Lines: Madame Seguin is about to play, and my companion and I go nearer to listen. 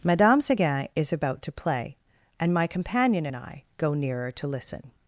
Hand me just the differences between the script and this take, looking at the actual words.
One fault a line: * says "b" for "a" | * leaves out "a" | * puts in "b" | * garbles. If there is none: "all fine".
all fine